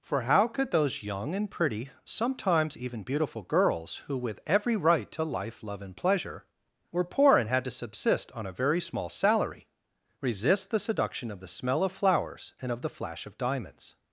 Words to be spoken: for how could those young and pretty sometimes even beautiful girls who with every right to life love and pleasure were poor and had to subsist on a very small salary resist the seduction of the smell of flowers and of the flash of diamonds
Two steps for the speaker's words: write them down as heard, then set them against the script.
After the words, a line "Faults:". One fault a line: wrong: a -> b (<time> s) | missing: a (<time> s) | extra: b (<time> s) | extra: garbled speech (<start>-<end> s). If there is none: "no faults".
for how could those young and pretty sometimes even beautiful girls who with every right to life love and pleasure were poor and had to subsist on a very small salary resist the seduction of the smell of flowers and of the flash of diamonds
Faults:
no faults